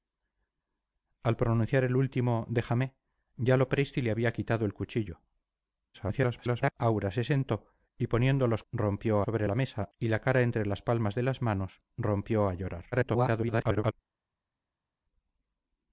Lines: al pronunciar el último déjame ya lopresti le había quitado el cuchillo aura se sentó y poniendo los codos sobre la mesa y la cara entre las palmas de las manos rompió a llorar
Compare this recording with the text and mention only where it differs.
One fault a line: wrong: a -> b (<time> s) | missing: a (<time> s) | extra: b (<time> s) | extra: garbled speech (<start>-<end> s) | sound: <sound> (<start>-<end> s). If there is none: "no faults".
extra: garbled speech (5.9-6.7 s)
wrong: codos -> rompió (8.7 s)
extra: garbled speech (12.9-13.9 s)